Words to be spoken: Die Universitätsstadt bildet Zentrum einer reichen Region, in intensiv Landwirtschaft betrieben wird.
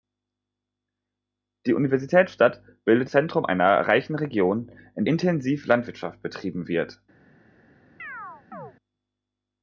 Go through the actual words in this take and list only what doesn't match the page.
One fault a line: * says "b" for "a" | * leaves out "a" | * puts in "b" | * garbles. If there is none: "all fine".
all fine